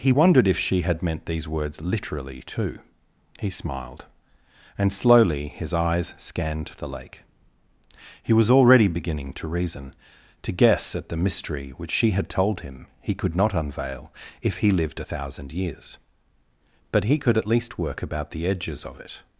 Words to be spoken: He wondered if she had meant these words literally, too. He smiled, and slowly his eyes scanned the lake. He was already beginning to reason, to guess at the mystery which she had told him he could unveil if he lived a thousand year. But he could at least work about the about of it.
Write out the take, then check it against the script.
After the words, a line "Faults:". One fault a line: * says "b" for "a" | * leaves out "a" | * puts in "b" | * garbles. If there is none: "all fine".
He wondered if she had meant these words literally, too. He smiled, and slowly his eyes scanned the lake. He was already beginning to reason, to guess at the mystery which she had told him he could not unveil if he lived a thousand years. But he could at least work about the edges of it.
Faults:
* puts in "not"
* says "years" for "year"
* says "edges" for "about"